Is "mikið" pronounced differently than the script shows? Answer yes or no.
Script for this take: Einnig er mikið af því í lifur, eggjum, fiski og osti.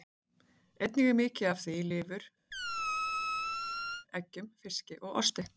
no